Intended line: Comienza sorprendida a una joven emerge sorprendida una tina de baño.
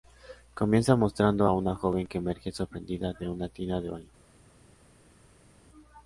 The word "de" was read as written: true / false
true